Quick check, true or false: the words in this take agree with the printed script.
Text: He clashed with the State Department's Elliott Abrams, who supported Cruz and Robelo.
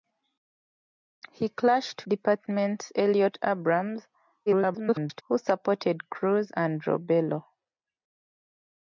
false